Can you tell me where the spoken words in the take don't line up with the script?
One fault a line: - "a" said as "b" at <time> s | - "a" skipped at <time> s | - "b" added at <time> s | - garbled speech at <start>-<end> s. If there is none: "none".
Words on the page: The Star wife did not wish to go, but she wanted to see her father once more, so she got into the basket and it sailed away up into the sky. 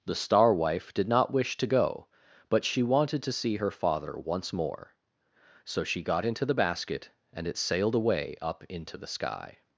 none